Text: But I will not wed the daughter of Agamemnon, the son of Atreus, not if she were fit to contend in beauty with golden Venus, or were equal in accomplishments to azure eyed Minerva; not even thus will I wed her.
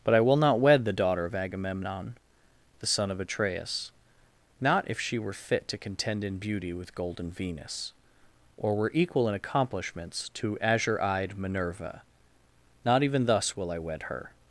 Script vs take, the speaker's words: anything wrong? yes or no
no